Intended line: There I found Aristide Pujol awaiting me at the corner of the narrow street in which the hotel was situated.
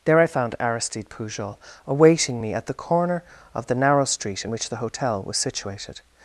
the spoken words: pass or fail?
pass